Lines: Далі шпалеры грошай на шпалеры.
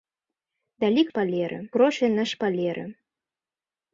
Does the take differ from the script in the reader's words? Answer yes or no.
no